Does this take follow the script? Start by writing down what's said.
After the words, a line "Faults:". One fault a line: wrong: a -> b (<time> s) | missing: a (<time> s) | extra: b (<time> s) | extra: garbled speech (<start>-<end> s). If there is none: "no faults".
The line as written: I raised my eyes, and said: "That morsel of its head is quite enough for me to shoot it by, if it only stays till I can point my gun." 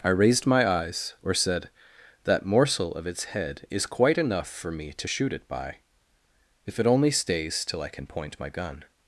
I raised my eyes, or said: "That morsel of its head is quite enough for me to shoot it by, if it only stays till I can point my gun."
Faults:
wrong: and -> or (1.2 s)